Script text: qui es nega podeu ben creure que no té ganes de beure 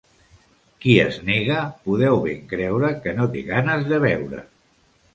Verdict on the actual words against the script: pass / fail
pass